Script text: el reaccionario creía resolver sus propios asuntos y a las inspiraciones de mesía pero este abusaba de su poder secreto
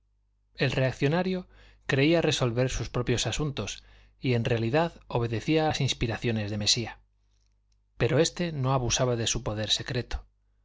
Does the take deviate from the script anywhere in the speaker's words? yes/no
yes